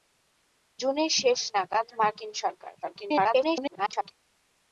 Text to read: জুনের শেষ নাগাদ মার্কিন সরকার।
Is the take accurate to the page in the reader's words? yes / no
no